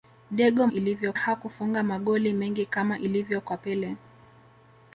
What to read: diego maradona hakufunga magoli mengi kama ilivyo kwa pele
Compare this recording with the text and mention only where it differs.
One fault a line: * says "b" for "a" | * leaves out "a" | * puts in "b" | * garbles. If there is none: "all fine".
* says "ilivyo" for "maradona"